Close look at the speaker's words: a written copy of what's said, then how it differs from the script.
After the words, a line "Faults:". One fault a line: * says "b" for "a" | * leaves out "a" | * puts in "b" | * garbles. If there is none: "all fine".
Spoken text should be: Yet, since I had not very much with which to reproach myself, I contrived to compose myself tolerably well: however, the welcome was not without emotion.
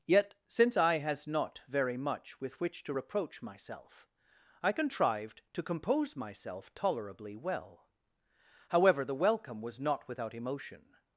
Yet, since I has not very much with which to reproach myself, I contrived to compose myself tolerably well: however, the welcome was not without emotion.
Faults:
* says "has" for "had"